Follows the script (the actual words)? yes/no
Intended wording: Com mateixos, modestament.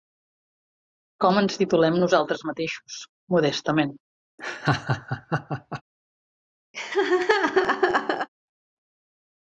no